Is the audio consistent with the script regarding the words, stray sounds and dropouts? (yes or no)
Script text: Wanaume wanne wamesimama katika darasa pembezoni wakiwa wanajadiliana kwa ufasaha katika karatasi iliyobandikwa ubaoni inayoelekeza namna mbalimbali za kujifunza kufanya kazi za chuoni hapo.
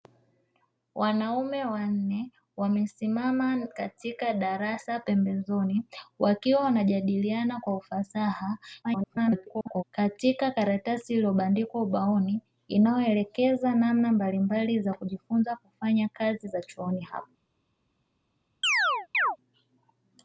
no